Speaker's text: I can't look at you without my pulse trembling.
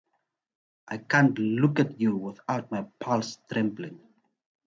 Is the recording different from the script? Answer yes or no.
no